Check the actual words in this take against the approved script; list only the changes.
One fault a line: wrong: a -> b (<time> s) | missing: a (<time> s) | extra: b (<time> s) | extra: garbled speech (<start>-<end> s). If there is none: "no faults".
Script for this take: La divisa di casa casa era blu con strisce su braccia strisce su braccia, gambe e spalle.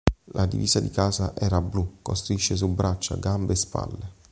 missing: casa (1.3 s)
missing: strisce su braccia (3.2 s)